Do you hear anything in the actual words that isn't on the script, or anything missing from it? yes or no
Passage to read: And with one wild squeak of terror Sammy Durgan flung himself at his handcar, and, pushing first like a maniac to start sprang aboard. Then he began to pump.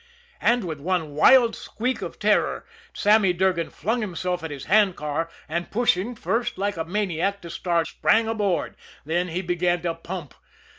no